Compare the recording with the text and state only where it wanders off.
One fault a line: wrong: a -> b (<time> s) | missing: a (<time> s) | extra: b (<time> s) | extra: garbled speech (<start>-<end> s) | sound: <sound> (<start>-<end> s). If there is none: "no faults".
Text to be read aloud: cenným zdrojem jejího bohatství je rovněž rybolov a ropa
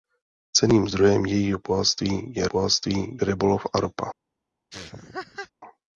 wrong: rovněž -> bohatství (2.5 s)
sound: laugh (4.7-5.5 s)